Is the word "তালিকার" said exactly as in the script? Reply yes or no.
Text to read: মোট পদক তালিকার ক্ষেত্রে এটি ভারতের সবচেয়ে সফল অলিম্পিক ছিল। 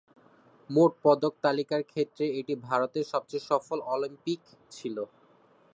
yes